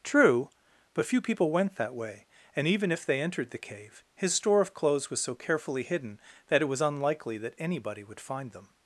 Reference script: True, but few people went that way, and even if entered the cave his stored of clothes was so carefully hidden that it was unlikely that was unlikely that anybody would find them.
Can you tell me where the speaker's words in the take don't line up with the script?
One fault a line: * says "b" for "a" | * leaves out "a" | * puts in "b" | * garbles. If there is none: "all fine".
* puts in "they"
* says "store" for "stored"
* leaves out "was unlikely that"